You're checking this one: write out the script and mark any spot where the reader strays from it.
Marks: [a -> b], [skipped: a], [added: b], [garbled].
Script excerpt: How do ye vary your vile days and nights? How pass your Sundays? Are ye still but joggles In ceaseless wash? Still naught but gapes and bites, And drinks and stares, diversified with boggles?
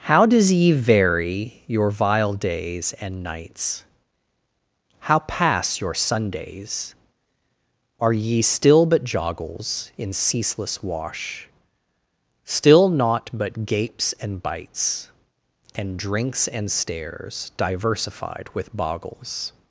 How [do -> does] ye vary your vile days and nights? How pass your Sundays? Are ye still but joggles In ceaseless wash? Still naught but gapes and bites, And drinks and stares, diversified with boggles?